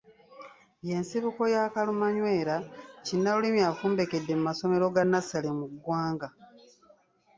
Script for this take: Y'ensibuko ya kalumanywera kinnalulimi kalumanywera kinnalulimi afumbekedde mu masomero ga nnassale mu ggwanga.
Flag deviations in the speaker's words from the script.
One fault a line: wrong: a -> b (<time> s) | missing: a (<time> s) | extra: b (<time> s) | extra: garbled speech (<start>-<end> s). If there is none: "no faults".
missing: kalumanywera kinnalulimi (3.6 s)